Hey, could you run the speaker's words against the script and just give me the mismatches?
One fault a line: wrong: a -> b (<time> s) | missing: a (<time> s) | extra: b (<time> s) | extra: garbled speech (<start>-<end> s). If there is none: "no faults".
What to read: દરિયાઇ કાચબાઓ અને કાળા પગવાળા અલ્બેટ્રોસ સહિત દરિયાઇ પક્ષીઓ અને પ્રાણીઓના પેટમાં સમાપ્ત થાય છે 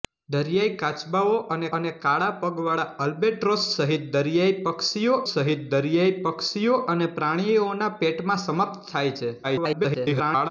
extra: અને (1.8 s)
extra: સહિત દરિયાઇ પક્ષીઓ (5.3 s)
extra: garbled speech (9.4-10.5 s)